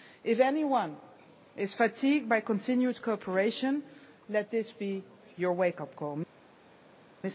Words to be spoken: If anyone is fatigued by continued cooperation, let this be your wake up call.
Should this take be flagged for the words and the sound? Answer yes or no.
no